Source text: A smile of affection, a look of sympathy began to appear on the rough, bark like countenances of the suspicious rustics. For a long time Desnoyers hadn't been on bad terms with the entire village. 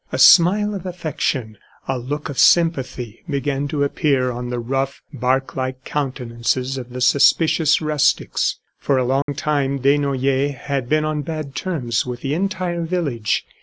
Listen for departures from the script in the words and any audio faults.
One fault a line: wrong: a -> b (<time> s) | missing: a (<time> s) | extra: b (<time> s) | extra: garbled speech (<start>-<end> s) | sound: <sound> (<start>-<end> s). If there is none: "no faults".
sound: dropout (9.2-9.3 s)
wrong: hadn't -> had (10.6 s)